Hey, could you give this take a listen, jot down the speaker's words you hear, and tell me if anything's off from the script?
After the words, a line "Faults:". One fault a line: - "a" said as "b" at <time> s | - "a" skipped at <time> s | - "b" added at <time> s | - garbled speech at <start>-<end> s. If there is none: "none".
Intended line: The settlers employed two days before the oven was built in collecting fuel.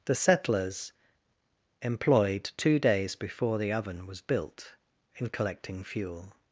The settlers employed two days before the oven was built in collecting fuel.
Faults:
none